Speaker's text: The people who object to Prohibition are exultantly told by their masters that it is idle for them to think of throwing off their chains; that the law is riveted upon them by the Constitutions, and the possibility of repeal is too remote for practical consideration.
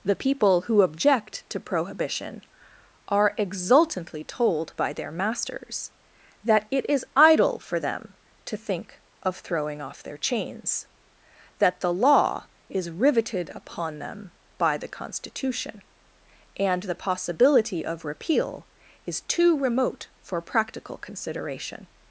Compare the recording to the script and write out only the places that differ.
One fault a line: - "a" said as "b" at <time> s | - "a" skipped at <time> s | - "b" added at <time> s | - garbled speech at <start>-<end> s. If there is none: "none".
- "Constitutions" said as "Constitution" at 14.9 s